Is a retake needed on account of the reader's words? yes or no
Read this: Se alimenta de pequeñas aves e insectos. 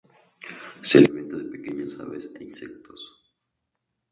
no